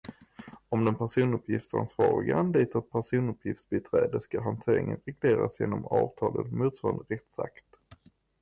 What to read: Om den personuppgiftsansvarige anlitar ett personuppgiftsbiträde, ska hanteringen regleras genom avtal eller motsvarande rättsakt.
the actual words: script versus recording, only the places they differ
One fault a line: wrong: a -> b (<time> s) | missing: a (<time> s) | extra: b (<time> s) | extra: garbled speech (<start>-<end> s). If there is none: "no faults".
no faults